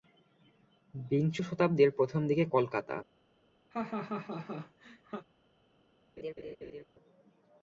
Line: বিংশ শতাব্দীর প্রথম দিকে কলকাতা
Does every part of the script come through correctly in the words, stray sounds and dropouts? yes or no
no